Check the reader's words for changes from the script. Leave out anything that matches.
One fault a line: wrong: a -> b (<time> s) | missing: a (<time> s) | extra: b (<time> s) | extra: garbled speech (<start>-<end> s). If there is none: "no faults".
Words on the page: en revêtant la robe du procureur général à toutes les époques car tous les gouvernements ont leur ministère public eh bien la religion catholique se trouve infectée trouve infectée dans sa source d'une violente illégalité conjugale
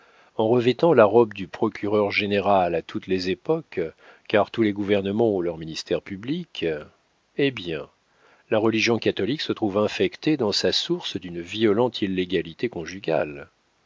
missing: trouve infectée (10.4 s)